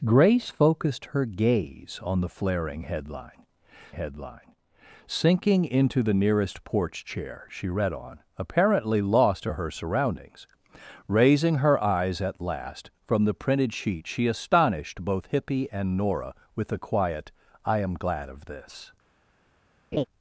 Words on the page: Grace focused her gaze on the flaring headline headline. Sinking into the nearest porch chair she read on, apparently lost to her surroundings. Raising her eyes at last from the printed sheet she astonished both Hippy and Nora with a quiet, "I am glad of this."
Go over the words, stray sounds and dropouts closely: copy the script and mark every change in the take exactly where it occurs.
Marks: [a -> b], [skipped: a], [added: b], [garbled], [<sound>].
Grace focused her gaze on the flaring headline headline. Sinking into the nearest porch chair she read on, apparently lost to her surroundings. Raising her eyes at last from the printed sheet she astonished both Hippy and Nora with a quiet, "I am glad of this." [laugh]